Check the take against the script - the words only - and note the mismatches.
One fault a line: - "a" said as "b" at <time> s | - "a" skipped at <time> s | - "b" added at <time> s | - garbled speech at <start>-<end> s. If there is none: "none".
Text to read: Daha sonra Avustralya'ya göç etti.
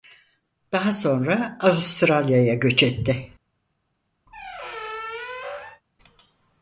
none